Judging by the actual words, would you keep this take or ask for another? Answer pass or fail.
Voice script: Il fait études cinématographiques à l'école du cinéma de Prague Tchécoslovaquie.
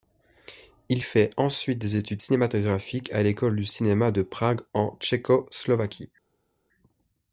fail